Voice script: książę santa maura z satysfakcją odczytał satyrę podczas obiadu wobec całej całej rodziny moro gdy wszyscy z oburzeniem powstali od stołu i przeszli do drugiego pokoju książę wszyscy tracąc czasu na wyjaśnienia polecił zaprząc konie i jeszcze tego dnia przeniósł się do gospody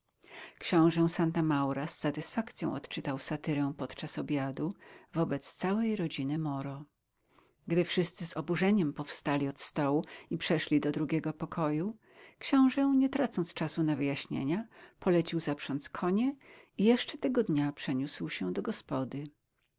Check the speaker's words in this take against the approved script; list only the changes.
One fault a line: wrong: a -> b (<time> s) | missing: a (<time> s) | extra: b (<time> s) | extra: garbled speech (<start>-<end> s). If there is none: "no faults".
missing: całej (6.0 s)
wrong: wszyscy -> nie (13.0 s)